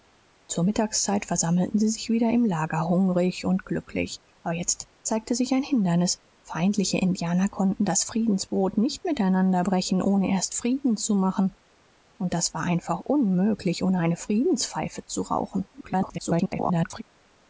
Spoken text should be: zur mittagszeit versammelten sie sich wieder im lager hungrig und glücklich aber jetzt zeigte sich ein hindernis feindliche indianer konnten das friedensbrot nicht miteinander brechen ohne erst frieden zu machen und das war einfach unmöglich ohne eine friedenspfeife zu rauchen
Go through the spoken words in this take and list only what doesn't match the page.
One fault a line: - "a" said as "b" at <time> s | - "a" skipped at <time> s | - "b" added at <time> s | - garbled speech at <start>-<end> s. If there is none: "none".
- garbled speech at 15.7-17.0 s